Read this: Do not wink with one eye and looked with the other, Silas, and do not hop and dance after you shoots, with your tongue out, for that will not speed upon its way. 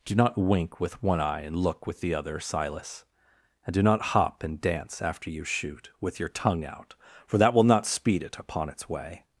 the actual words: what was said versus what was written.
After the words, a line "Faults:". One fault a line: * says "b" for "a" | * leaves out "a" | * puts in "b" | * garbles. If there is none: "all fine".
Do not wink with one eye and look with the other, Silas, and do not hop and dance after you shoot, with your tongue out, for that will not speed it upon its way.
Faults:
* says "look" for "looked"
* says "shoot" for "shoots"
* puts in "it"